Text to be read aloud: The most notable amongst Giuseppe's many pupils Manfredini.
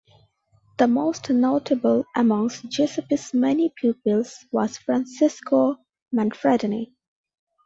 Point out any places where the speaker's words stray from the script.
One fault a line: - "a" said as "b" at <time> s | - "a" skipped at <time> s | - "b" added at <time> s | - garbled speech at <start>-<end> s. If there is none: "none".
- "was Francesco" added at 4.5 s